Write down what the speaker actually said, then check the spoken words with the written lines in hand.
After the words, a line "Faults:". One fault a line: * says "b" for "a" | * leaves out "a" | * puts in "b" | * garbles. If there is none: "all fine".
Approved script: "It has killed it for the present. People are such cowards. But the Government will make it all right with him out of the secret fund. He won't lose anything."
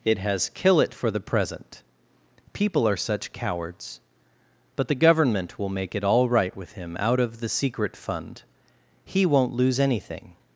"It has kill it for the present. People are such cowards. But the Government will make it all right with him out of the secret fund. He won't lose anything."
Faults:
* says "kill" for "killed"